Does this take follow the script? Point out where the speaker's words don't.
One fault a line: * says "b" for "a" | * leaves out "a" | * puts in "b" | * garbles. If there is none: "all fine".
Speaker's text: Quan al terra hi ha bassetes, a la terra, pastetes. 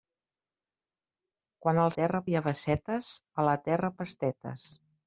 all fine